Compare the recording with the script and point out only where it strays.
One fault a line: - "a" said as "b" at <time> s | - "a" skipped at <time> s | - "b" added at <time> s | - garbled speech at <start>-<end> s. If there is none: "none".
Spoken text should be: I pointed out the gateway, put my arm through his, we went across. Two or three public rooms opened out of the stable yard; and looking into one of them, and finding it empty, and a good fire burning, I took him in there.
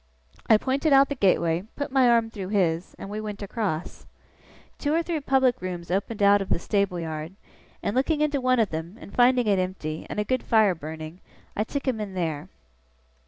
- "and" added at 3.0 s